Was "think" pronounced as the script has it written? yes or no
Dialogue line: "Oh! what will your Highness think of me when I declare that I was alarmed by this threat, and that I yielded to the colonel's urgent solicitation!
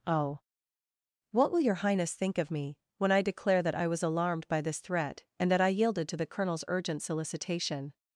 yes